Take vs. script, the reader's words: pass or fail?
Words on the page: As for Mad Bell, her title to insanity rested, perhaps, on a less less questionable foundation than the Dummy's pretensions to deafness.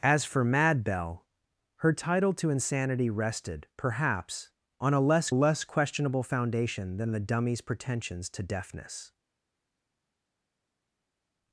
pass